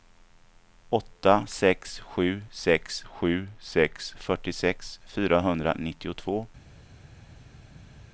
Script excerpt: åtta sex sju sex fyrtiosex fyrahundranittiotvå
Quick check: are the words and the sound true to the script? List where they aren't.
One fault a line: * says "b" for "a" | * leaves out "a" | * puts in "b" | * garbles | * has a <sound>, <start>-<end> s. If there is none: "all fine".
* puts in "sju sex"